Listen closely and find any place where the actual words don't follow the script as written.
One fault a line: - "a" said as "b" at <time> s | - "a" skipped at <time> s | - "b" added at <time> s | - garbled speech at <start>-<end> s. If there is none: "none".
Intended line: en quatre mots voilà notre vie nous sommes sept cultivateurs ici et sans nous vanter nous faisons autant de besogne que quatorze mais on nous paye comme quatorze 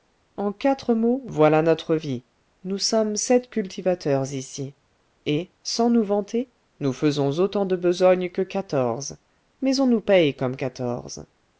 none